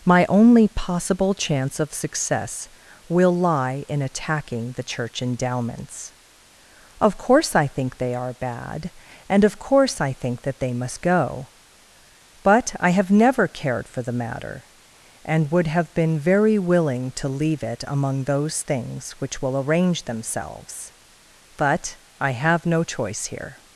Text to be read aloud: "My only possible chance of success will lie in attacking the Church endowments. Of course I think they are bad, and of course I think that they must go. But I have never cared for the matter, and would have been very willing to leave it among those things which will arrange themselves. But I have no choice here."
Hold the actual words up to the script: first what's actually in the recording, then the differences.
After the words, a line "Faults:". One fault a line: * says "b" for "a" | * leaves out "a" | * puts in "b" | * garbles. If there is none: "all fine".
"My only possible chance of success will lie in attacking the Church endowments. Of course I think they are bad, and of course I think that they must go. But I have never cared for the matter, and would have been very willing to leave it among those things which will arrange themselves. But I have no choice here."
Faults:
all fine